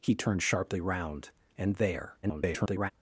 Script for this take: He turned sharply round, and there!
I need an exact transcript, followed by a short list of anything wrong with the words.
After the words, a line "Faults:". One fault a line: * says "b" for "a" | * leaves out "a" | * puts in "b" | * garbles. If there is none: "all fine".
He turned sharply round, and there! [garbled]
Faults:
* garbles